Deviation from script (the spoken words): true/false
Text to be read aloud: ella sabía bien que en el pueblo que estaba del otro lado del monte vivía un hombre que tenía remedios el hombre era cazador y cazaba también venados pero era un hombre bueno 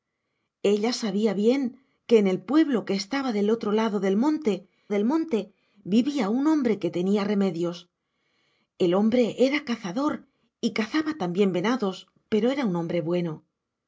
true